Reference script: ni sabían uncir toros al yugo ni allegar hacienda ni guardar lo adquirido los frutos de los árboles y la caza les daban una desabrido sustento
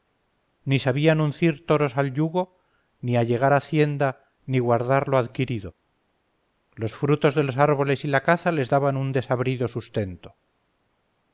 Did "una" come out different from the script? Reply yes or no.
yes